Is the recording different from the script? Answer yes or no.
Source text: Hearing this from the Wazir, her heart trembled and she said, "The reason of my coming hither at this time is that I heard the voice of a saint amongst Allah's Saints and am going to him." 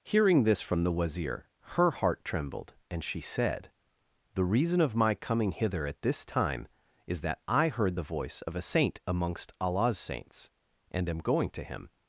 no